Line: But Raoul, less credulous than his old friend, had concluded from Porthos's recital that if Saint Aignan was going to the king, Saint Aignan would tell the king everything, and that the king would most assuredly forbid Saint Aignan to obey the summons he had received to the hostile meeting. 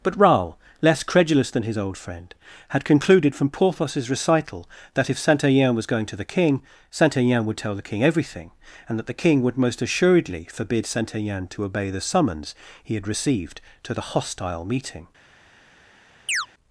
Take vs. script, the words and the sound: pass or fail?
fail